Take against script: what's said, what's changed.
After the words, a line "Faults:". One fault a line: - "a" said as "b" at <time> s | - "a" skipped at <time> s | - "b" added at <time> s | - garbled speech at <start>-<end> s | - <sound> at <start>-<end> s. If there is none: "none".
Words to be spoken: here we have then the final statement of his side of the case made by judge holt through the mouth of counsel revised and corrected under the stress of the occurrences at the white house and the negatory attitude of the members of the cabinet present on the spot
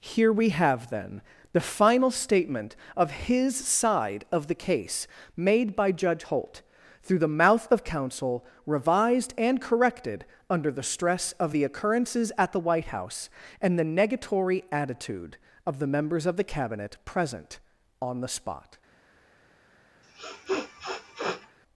here we have then the final statement of his side of the case made by judge holt through the mouth of counsel revised and corrected under the stress of the occurrences at the white house and the negatory attitude of the members of the cabinet present on the spot
Faults:
- sniff at 20.0-21.6 s